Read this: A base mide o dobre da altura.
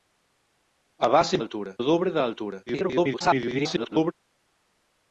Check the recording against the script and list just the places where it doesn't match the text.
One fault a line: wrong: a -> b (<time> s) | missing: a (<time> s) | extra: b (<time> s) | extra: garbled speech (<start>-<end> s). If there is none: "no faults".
wrong: mide -> altura (1.4 s)
extra: garbled speech (2.7-4.1 s)